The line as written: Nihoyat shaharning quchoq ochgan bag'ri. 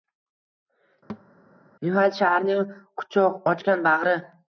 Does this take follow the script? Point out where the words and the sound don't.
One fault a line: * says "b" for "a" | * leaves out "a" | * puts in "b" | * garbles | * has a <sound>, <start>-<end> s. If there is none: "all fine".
* has a thud, 1.1-1.3 s